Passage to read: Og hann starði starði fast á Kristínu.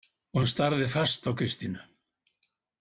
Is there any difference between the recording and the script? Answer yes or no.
yes